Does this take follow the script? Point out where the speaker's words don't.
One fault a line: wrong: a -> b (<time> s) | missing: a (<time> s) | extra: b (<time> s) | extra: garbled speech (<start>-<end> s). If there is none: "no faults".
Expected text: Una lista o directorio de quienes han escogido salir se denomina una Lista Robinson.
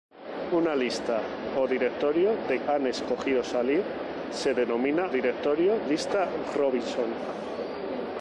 missing: quienes (2.6 s)
wrong: una -> directorio (5.1 s)